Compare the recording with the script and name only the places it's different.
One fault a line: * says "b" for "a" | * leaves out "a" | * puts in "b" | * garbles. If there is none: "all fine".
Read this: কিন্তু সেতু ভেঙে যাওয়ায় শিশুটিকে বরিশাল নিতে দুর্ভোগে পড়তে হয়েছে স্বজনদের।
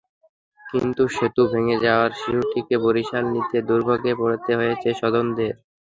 all fine